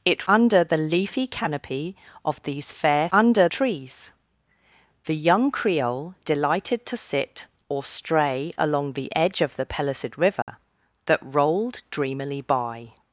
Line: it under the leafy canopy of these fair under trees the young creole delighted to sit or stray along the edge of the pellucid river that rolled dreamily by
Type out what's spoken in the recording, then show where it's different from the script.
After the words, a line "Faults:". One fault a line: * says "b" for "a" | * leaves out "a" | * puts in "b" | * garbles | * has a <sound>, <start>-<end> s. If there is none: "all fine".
it under the leafy canopy of these fair under trees the young creole delighted to sit or stray along the edge of the pellucid river that rolled dreamily by
Faults:
* has a dropout, 10.4-10.5 s